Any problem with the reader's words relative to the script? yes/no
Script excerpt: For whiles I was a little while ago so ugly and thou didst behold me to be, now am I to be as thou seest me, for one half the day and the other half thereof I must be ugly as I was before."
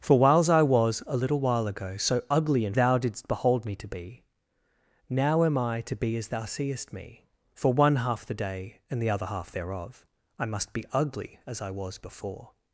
no